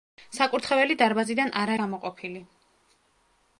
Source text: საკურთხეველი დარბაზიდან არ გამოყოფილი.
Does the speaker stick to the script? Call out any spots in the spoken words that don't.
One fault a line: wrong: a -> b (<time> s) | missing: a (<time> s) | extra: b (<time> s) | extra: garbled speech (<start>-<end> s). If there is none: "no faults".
no faults